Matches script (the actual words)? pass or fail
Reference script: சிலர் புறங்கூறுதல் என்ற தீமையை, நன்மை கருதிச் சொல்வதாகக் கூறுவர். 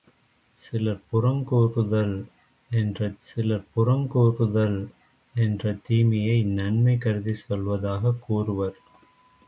fail